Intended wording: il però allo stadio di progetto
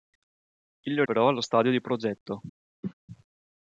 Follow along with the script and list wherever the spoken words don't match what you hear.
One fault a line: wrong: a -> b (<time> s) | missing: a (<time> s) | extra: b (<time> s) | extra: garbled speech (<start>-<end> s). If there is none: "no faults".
no faults